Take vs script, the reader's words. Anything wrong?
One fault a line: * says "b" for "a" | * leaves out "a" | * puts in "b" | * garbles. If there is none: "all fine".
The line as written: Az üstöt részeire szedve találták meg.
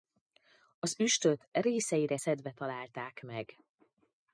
all fine